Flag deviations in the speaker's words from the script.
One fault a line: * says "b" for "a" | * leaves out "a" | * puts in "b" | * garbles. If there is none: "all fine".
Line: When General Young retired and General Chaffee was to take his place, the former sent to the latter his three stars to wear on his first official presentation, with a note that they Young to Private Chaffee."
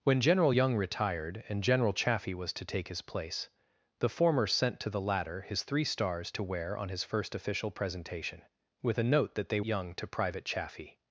all fine